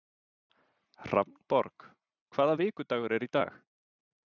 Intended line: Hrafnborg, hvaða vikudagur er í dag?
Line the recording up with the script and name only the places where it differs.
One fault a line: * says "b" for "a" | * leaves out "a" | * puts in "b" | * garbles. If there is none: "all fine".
all fine